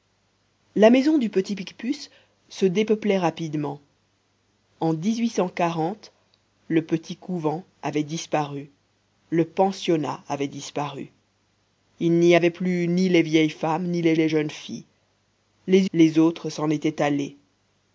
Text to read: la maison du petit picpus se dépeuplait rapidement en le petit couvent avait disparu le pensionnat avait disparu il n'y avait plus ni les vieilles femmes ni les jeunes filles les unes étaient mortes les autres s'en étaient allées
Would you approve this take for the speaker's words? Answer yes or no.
no